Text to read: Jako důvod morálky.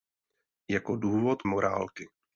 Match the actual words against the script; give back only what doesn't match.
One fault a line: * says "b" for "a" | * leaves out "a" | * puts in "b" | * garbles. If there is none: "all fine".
all fine